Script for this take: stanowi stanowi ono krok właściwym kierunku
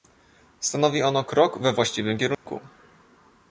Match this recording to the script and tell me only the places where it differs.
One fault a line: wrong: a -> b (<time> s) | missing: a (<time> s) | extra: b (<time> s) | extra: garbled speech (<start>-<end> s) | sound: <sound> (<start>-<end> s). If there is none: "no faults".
missing: stanowi (1.0 s)
extra: we (1.6 s)
sound: dropout (2.3-2.5 s)